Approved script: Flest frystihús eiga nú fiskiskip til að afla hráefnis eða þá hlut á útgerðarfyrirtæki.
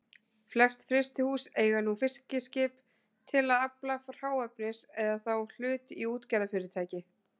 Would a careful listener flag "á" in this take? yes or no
yes